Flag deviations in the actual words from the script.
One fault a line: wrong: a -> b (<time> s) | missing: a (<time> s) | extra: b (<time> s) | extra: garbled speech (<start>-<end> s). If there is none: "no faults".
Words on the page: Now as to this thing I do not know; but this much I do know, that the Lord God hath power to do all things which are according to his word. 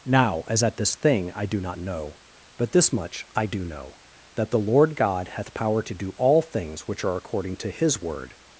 wrong: to -> at (0.6 s)